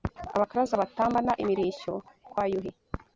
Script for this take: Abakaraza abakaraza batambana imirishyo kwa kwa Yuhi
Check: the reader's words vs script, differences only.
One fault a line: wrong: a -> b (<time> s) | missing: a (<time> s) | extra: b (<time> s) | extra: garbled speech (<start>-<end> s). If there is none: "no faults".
missing: abakaraza (0.8 s)
missing: kwa (2.4 s)